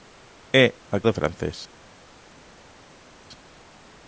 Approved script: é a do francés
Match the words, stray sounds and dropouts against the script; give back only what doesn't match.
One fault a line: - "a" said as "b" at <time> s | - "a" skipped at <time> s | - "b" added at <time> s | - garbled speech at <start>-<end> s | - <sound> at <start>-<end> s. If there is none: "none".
none